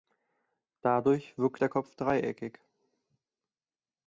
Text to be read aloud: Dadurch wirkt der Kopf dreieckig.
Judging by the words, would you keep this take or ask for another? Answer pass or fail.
pass